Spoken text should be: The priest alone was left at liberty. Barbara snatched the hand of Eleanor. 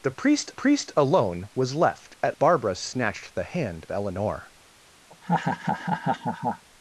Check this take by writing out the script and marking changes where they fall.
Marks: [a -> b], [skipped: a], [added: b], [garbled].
The priest [added: priest] alone was left at [skipped: liberty.] Barbara snatched the hand [skipped: of] Eleanor.